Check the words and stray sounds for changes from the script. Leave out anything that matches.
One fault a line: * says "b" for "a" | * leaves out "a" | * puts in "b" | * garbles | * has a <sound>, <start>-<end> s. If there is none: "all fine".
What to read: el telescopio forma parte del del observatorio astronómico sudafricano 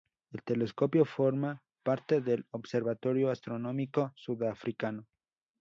* leaves out "del"